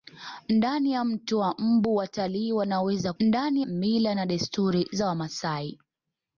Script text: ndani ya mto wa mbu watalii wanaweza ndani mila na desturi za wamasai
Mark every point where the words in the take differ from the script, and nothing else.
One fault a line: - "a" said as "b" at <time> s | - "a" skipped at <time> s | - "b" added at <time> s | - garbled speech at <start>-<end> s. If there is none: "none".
none